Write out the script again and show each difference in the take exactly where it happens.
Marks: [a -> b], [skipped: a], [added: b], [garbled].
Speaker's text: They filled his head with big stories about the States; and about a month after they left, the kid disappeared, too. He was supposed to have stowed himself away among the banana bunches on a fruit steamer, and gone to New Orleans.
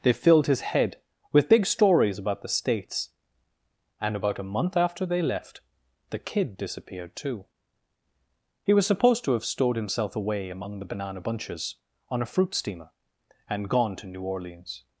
They filled his head with big stories about the States; and about a month after they left, the kid disappeared, too. He was supposed to have stowed himself away among the banana bunches on a fruit steamer, and gone to New Orleans.